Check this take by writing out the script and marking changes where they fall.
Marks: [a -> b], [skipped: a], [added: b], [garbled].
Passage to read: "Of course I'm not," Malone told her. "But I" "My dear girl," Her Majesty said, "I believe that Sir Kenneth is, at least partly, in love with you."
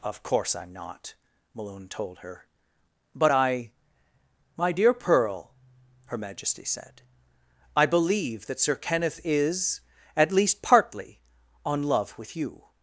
"Of course I'm not," Malone told her. "But I" "My dear [girl," -> pearl] Her Majesty said, "I believe that Sir Kenneth is, at least partly, [in -> on] love with you."